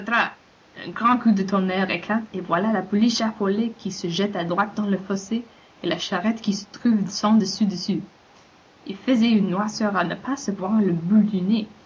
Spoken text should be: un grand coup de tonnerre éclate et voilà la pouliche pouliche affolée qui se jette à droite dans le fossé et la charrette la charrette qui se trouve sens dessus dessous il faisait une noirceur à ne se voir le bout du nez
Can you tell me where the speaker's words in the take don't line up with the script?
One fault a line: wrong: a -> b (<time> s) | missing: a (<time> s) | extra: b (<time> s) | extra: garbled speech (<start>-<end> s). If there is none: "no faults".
missing: pouliche (3.2 s)
missing: la charrette (6.4 s)
extra: pas (10.1 s)